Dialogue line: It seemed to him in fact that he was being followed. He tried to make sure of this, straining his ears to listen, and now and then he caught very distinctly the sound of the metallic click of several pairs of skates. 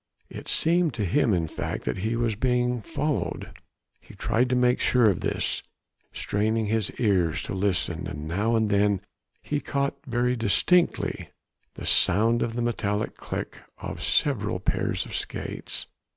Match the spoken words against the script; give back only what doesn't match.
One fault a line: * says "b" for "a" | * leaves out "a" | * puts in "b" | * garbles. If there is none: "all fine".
all fine